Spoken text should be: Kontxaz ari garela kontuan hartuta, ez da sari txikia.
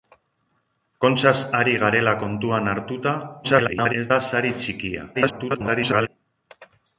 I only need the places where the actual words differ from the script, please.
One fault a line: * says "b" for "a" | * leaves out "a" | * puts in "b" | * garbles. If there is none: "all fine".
* garbles
* garbles